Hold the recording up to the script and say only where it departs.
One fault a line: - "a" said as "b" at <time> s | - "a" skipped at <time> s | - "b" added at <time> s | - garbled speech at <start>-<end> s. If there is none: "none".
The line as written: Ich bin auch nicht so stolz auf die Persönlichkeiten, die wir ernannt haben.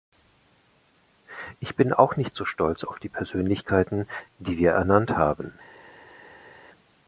none